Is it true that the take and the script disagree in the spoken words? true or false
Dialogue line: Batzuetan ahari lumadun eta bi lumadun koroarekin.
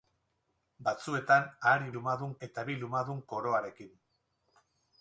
false